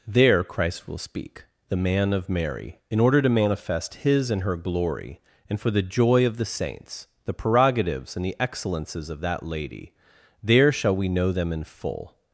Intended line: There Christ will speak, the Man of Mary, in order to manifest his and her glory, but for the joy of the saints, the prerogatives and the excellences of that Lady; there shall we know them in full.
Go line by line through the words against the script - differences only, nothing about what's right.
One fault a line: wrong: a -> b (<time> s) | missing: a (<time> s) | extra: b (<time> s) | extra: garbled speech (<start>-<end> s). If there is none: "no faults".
wrong: but -> and (5.5 s)